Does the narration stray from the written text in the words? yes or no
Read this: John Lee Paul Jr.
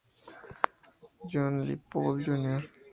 no